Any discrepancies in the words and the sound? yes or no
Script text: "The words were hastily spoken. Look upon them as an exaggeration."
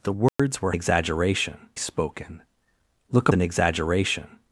yes